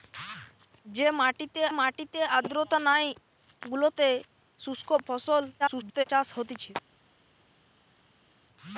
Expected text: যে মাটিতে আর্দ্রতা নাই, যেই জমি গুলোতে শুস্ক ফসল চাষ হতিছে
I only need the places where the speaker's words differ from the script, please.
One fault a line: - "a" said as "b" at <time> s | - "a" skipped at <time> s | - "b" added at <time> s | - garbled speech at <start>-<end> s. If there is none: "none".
- "মাটিতে" added at 1.8 s
- "যেই জমি" skipped at 3.0 s
- garbled speech at 5.6-6.0 s